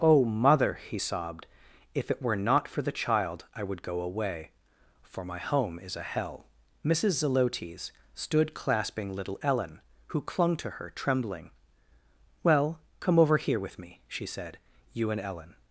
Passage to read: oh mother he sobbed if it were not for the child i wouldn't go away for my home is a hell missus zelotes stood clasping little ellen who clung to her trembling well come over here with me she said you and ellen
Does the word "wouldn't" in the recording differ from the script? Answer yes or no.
yes